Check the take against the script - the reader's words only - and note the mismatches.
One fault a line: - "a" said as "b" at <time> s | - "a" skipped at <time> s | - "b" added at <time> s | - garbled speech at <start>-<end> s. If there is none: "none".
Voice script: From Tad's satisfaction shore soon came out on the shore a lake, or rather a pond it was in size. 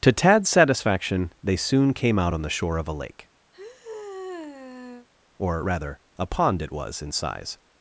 - "From" said as "To" at 0.0 s
- "shore" said as "they" at 1.4 s
- "of" added at 2.8 s